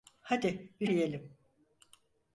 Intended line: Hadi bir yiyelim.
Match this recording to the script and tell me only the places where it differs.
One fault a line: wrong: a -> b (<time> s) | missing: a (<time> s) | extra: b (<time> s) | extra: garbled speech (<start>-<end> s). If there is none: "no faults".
no faults